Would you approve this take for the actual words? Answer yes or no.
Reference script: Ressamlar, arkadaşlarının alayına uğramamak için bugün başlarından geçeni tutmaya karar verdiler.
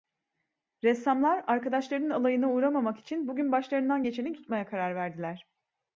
yes